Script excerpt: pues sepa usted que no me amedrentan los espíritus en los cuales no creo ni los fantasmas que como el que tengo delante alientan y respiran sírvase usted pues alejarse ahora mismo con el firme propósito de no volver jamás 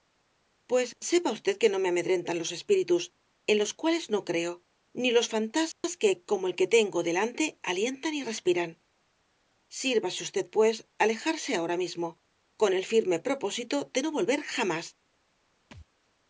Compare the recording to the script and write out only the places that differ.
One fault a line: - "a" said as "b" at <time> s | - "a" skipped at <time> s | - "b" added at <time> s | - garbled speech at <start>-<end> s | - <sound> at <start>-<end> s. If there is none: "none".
- dropout at 5.7-5.8 s
- thud at 15.7-15.9 s